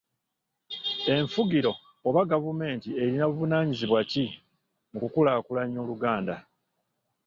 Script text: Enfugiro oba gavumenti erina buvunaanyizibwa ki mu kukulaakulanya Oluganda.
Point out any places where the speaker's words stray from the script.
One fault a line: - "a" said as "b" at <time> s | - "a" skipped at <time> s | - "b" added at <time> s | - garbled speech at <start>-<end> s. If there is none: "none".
none